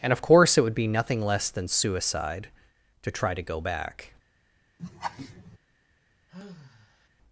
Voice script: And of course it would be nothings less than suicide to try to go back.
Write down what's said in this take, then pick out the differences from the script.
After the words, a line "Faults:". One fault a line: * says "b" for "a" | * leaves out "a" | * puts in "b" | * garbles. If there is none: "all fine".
And of course it would be nothing less than suicide to try to go back.
Faults:
* says "nothing" for "nothings"